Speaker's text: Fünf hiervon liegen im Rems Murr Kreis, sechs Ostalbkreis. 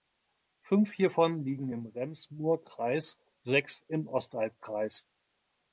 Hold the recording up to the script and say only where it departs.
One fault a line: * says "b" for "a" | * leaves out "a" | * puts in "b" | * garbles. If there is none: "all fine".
* puts in "im"